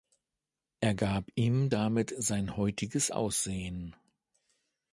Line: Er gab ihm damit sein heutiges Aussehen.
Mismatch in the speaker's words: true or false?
false